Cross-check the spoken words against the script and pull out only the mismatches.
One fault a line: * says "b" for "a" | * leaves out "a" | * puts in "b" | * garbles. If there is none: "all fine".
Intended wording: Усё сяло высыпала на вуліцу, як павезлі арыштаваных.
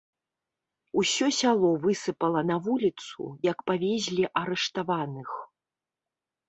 all fine